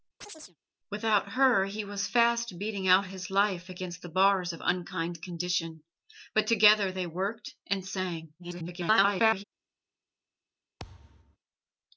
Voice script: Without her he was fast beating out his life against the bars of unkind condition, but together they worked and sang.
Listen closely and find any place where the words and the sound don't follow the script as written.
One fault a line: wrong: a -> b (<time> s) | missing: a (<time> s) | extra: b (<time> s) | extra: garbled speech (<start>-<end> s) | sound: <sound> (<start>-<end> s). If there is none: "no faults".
sound: chirp (0.2-0.6 s)
extra: garbled speech (8.4-9.4 s)
sound: thud (10.8-11.4 s)